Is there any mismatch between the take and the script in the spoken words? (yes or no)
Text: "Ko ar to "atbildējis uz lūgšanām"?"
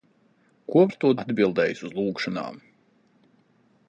no